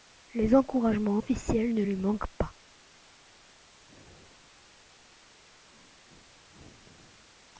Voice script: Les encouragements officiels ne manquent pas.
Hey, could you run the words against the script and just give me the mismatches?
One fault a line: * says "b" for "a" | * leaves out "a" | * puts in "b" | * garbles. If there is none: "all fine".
* puts in "lui"